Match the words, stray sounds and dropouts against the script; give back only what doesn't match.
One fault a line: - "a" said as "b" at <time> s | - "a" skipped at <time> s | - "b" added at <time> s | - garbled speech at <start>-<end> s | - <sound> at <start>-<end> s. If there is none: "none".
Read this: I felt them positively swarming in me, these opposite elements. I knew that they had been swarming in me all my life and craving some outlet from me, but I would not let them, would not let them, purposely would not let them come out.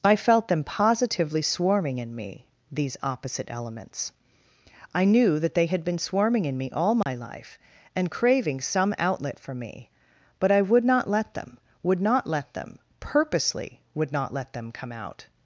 - dropout at 7.0-7.1 s
- "from" said as "for" at 9.4 s